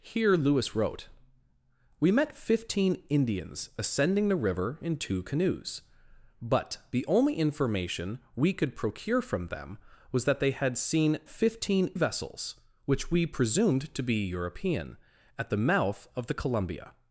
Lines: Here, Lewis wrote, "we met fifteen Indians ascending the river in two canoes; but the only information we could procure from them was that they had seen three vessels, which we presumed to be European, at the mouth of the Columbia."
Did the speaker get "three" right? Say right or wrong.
wrong